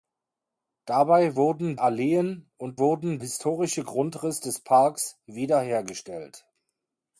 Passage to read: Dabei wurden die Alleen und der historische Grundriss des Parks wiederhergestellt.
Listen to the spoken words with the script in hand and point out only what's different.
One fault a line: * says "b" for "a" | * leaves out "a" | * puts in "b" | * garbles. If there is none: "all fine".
* leaves out "die"
* says "wurden" for "der"